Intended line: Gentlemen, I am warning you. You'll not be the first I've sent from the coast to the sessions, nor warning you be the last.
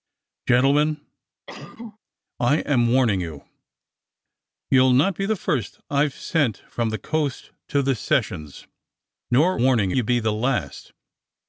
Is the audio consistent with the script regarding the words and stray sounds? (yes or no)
no